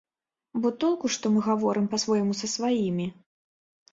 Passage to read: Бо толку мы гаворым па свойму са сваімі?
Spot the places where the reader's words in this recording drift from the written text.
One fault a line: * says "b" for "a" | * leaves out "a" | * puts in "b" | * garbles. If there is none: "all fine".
* puts in "што"